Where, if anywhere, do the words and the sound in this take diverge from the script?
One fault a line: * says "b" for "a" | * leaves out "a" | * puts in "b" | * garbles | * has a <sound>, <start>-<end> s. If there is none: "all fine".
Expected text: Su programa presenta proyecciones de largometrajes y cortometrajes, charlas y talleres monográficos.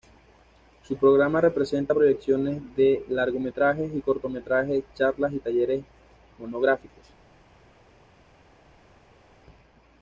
all fine